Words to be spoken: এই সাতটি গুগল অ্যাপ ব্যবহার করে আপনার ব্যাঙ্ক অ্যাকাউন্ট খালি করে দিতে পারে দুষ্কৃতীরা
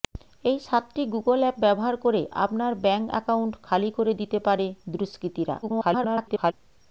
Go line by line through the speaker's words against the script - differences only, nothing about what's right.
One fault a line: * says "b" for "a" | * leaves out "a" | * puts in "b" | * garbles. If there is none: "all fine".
* garbles